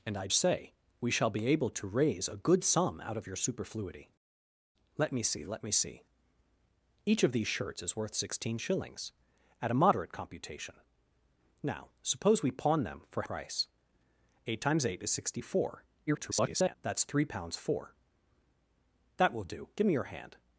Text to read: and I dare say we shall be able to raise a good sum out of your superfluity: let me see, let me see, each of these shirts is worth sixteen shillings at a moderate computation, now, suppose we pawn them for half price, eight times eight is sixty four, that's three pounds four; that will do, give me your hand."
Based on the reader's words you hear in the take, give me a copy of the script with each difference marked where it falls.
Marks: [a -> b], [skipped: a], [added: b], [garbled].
and I [skipped: dare] say we shall be able to raise a good sum out of your superfluity: let me see, let me see, each of these shirts is worth sixteen shillings at a moderate computation, now, suppose we pawn them for [skipped: half] price, eight times eight is sixty four, [garbled] that's three pounds four; that will do, give me your hand."